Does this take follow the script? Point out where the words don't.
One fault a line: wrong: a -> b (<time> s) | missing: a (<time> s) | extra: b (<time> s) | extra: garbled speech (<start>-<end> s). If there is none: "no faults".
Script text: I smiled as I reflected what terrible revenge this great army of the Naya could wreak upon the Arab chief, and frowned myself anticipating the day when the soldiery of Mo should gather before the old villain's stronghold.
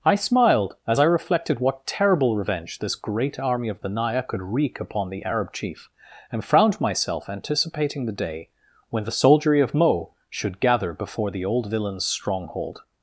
no faults